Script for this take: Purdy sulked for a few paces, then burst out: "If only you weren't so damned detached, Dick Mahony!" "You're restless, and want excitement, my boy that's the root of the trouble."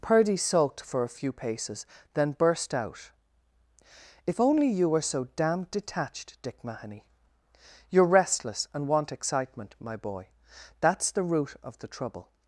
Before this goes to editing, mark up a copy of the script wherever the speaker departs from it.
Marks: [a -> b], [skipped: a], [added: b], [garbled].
Purdy sulked for a few paces, then burst out: "If only you [weren't -> were] so damned detached, Dick Mahony!" "You're restless, and want excitement, my boy that's the root of the trouble."